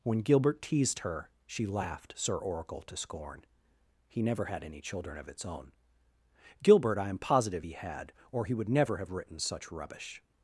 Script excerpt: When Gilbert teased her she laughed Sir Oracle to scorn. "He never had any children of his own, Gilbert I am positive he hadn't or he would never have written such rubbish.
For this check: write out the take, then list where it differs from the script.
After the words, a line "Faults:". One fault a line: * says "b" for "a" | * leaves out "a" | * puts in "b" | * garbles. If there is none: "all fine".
When Gilbert teased her she laughed Sir Oracle to scorn. "He never had any children of its own, Gilbert I am positive he had or he would never have written such rubbish.
Faults:
* says "its" for "his"
* says "had" for "hadn't"